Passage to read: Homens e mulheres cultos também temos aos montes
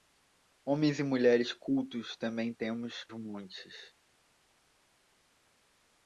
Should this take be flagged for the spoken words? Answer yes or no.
yes